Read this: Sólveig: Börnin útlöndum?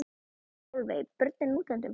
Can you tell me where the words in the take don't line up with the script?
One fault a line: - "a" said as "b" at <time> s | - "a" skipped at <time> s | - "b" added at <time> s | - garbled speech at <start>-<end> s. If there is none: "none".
none